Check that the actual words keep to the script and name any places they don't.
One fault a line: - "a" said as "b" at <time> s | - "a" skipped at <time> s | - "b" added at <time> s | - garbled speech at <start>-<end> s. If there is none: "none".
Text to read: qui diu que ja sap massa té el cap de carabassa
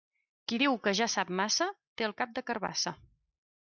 none